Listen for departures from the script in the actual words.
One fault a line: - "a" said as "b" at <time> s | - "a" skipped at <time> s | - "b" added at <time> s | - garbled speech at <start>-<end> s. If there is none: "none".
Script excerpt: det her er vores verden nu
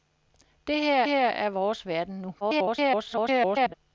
- "her" added at 1.1 s
- garbled speech at 2.4-3.7 s